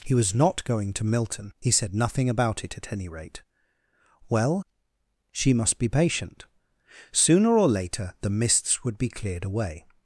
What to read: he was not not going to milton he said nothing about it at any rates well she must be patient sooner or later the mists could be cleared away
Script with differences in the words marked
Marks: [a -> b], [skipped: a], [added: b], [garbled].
he was not [skipped: not] going to milton he said nothing about it at any [rates -> rate] well she must be patient sooner or later the mists [could -> would] be cleared away